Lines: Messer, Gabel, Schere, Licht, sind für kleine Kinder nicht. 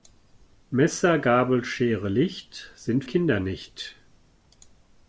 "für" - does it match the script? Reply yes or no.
no